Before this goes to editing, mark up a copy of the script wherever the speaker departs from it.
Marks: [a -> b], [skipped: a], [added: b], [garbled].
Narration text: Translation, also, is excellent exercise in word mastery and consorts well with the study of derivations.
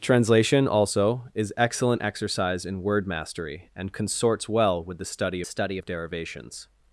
Translation, also, is excellent exercise in word mastery and consorts well with the study [added: study] of derivations.